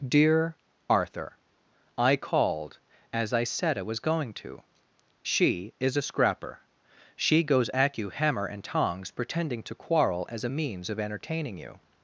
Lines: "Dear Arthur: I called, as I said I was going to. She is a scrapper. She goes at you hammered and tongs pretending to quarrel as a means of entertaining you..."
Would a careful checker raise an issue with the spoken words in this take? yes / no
yes